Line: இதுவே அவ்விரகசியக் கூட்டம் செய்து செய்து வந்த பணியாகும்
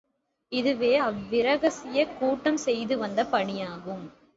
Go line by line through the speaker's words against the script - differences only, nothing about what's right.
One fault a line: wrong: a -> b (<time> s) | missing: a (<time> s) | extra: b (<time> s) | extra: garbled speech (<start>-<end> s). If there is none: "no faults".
missing: செய்து (3.0 s)